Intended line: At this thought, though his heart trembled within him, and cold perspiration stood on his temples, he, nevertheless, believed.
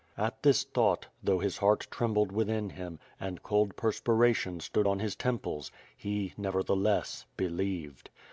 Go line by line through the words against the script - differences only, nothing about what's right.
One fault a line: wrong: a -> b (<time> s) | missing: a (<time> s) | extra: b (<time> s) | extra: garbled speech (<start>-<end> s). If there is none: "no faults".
no faults